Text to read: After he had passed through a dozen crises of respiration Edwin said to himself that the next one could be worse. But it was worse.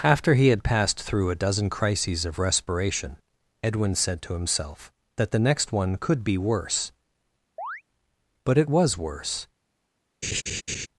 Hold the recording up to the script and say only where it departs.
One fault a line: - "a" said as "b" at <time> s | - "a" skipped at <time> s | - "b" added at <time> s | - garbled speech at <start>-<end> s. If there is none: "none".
none